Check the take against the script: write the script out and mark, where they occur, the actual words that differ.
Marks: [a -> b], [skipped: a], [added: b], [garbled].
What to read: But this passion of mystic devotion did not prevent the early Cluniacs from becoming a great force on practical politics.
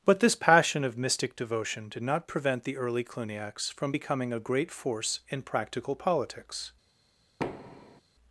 But this passion of mystic devotion did not prevent the early Cluniacs from becoming a great force [on -> in] practical politics.